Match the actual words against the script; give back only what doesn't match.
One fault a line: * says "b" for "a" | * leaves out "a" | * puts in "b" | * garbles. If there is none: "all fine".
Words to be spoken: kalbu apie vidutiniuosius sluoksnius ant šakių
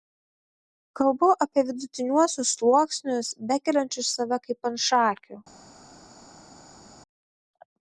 * puts in "bekeliančius save kaip"